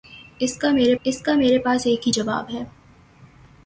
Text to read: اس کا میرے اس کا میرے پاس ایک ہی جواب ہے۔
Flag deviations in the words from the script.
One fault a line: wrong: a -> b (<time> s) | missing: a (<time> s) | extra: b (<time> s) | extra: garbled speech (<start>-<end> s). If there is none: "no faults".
no faults